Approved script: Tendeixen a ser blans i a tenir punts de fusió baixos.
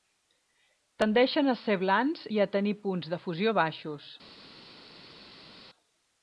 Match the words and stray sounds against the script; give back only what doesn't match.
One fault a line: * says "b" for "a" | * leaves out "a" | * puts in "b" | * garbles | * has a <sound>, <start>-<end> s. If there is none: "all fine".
all fine